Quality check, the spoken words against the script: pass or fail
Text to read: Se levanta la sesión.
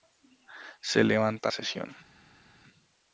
fail